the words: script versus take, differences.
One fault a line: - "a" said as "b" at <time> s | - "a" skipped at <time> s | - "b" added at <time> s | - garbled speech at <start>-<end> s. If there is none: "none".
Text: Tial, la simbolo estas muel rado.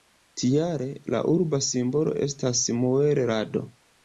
- "urba" added at 1.3 s